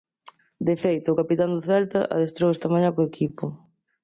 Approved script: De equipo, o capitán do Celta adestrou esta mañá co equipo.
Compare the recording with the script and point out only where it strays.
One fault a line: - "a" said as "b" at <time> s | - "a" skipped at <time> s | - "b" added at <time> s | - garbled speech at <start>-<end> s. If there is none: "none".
- "equipo" said as "feito" at 0.8 s